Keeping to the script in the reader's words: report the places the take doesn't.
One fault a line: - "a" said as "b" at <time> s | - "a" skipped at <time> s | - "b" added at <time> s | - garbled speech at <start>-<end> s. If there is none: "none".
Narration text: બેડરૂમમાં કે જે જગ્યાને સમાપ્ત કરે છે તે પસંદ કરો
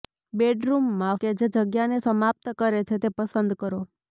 none